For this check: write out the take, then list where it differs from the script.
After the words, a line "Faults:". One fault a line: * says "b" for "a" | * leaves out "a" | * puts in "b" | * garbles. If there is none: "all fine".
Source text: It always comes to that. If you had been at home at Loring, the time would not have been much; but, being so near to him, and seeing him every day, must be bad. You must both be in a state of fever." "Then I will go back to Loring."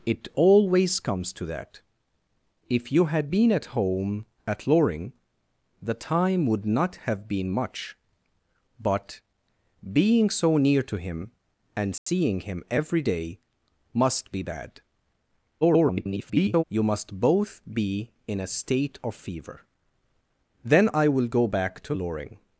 It always comes to that. If you had been at home at Loring, the time would not have been much; but, being so near to him, and seeing him every day, must be bad. [garbled] You must both be in a state of fever." "Then I will go back to Loring."
Faults:
* garbles